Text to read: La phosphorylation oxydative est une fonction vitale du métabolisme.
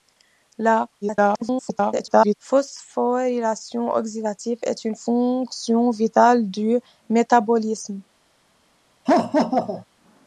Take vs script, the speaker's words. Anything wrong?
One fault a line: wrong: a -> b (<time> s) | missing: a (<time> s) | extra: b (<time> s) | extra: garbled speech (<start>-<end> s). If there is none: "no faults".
extra: garbled speech (1.0-2.3 s)